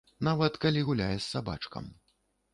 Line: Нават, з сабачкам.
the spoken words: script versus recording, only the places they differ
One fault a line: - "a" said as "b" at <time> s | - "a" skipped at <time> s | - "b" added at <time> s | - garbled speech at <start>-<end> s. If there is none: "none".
- "калі гуляе" added at 0.6 s